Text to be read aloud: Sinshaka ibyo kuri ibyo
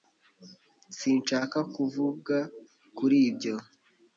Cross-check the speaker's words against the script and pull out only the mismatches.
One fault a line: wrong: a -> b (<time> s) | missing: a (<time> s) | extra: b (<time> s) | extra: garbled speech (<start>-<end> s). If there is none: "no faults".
wrong: ibyo -> kuvuga (1.7 s)